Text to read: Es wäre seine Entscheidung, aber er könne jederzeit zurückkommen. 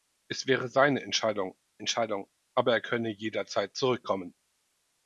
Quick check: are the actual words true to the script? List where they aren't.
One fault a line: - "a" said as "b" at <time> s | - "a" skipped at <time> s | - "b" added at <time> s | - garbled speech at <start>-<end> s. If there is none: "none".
- "Entscheidung" added at 1.8 s